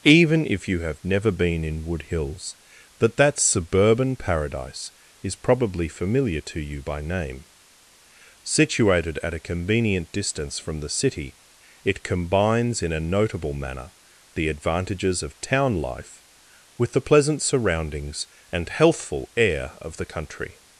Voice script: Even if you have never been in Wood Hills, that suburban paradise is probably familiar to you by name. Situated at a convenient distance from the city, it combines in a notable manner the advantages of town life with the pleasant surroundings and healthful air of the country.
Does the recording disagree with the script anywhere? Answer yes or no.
yes